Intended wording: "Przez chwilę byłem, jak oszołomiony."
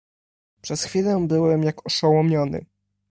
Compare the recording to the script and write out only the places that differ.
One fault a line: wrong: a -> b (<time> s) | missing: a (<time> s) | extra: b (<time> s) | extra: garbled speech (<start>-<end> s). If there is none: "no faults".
no faults